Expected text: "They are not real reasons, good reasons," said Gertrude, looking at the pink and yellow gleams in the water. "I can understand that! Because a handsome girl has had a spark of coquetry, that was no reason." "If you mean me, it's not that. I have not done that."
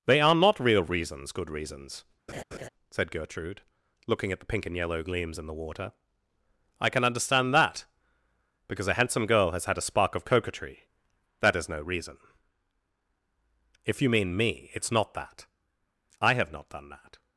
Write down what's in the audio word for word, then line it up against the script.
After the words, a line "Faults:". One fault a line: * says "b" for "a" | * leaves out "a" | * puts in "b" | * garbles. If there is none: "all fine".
"They are not real reasons, good reasons," said Gertrude, looking at the pink and yellow gleams in the water. "I can understand that! Because a handsome girl has had a spark of coquetry, that is no reason." "If you mean me, it's not that. I have not done that."
Faults:
* says "is" for "was"